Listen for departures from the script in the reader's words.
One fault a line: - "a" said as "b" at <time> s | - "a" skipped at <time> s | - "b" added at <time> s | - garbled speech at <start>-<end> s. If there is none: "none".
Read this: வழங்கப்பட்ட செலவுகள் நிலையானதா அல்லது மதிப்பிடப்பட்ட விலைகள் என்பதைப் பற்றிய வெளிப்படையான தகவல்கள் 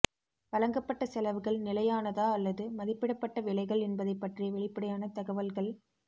none